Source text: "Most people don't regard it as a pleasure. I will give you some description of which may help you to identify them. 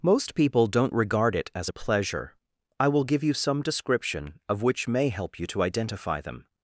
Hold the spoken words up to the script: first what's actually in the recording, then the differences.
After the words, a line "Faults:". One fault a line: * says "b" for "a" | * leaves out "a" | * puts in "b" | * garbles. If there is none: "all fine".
"Most people don't regard it as a pleasure. I will give you some description of which may help you to identify them.
Faults:
all fine